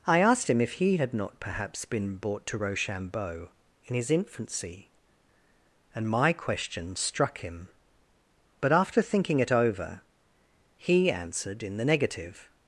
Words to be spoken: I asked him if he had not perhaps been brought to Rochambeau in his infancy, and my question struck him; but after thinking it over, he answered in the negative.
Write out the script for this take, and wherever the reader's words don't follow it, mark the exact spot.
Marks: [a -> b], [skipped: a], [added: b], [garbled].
I asked him if he had not perhaps been brought to Rochambeau in his infancy, and my question struck him; but after thinking it over, he answered in the negative.